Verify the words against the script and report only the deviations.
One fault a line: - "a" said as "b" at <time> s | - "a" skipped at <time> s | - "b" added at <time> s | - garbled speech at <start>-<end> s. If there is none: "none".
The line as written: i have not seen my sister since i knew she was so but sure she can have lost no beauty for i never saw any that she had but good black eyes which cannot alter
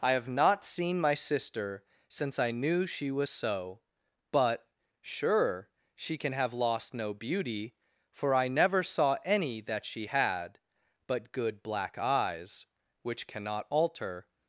none